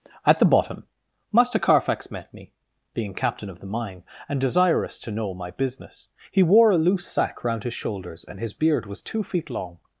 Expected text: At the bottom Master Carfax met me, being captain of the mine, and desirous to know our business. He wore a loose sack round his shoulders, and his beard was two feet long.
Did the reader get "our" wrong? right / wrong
wrong